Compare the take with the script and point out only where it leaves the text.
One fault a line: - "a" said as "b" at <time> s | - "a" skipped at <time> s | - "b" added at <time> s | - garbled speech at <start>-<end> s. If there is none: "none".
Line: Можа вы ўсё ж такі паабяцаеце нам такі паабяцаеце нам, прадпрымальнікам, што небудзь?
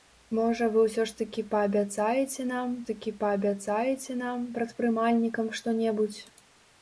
none